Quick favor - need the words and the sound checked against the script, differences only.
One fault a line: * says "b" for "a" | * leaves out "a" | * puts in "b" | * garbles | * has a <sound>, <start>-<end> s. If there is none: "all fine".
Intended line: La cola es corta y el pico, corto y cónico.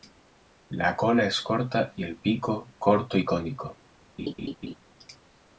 * has a laugh, 4.2-4.8 s